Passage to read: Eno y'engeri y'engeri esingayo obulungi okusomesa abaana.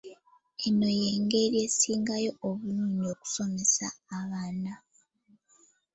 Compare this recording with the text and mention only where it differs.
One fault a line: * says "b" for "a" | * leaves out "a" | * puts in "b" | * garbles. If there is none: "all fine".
* leaves out "y'engeri"